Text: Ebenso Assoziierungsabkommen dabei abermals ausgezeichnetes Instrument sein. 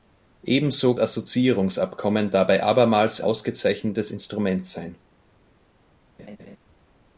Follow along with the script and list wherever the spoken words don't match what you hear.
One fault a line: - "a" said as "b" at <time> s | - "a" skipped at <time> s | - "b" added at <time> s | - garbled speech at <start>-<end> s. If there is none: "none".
none